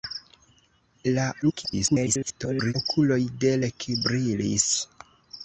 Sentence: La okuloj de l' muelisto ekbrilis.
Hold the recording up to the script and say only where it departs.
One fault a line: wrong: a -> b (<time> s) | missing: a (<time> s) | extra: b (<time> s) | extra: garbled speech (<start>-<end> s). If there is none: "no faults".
extra: garbled speech (1.4-2.7 s)
missing: l muelisto (3.5 s)